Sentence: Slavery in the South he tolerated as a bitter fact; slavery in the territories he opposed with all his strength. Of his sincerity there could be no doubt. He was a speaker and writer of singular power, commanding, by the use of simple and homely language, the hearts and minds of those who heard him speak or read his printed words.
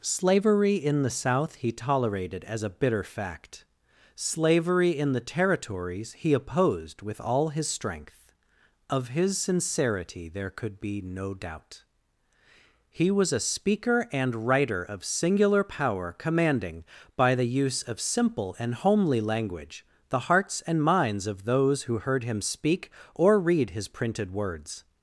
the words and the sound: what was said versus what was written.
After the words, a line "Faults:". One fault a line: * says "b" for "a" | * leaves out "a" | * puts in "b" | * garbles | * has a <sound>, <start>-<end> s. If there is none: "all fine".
Slavery in the South he tolerated as a bitter fact; slavery in the territories he opposed with all his strength. Of his sincerity there could be no doubt. He was a speaker and writer of singular power, commanding, by the use of simple and homely language, the hearts and minds of those who heard him speak or read his printed words.
Faults:
all fine